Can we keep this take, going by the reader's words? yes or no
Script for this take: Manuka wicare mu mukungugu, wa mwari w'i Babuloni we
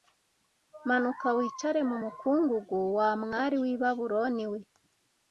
yes